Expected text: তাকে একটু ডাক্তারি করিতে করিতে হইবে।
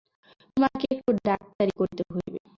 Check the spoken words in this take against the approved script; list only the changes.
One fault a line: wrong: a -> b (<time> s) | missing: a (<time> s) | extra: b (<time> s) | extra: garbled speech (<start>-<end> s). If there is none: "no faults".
wrong: তাকে -> তোমাকে (0.5 s)
missing: করিতে (2.0 s)